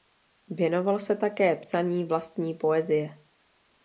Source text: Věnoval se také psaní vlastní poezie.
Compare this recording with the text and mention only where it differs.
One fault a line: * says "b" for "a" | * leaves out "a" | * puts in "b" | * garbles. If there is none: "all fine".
all fine